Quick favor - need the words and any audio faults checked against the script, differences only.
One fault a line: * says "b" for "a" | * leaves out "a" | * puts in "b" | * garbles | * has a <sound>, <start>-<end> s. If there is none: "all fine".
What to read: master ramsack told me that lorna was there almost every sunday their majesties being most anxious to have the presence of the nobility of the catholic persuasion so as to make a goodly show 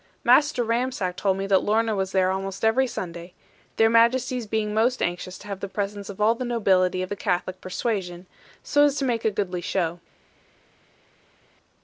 * puts in "all"